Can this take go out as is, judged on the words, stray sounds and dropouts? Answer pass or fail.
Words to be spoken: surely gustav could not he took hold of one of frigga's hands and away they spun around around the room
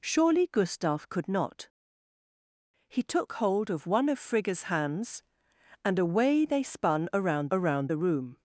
pass